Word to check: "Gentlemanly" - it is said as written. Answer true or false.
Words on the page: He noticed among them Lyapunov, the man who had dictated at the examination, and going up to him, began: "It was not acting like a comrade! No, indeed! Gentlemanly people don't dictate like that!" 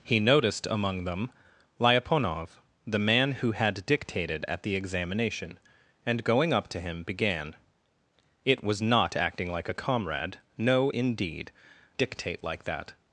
false